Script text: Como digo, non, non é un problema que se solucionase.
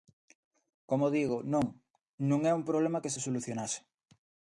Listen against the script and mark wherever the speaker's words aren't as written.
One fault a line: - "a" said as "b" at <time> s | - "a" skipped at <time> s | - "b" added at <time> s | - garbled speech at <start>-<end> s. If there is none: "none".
none